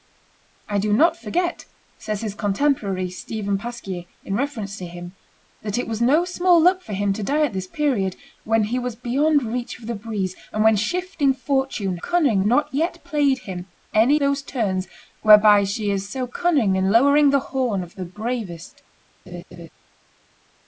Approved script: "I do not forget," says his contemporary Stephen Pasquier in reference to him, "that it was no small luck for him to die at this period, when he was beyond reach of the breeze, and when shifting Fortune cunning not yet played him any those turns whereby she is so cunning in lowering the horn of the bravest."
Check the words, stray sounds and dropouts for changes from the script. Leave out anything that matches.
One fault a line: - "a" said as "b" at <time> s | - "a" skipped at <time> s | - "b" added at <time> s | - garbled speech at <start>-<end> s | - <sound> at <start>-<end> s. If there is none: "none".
- laugh at 19.3-19.7 s